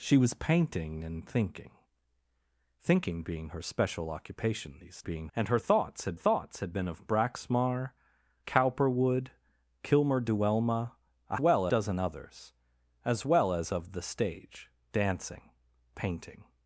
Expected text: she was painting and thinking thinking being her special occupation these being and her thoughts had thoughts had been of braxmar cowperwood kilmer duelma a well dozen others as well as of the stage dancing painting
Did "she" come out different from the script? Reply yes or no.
no